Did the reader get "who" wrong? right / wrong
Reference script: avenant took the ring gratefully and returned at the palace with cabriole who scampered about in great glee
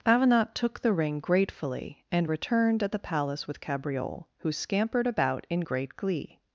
right